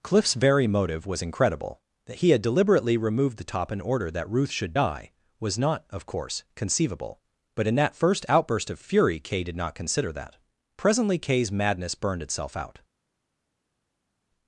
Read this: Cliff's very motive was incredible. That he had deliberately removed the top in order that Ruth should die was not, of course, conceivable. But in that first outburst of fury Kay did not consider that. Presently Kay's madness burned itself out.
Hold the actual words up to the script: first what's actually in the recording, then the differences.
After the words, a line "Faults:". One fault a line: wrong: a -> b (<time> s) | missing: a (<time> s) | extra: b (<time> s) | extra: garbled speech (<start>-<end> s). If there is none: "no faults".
Cliff's very motive was incredible. That he had deliberately removed the top in order that Ruth should die was not, of course, conceivable. But in that first outburst of fury Kay did not consider that. Presently Kay's madness burned itself out.
Faults:
no faults